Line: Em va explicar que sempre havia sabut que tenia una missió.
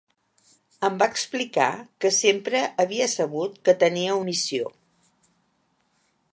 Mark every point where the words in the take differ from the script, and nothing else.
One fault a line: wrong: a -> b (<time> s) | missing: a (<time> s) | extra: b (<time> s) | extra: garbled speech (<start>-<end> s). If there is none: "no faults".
missing: una (4.2 s)